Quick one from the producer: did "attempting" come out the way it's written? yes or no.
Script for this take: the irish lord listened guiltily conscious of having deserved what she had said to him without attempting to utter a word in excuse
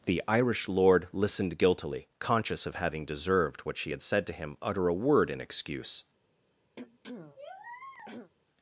no